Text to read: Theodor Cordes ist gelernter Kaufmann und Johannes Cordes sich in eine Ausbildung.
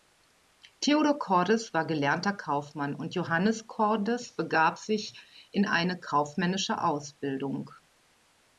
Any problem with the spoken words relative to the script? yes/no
yes